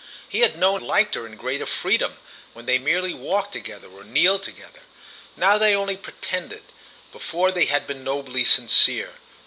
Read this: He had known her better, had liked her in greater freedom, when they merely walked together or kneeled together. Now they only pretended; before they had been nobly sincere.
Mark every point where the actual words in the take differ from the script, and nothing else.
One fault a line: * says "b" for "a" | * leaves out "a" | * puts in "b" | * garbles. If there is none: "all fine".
* leaves out "her better had"